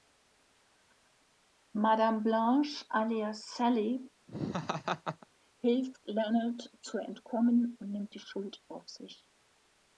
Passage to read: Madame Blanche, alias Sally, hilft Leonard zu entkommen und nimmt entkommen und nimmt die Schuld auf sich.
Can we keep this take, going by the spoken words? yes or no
no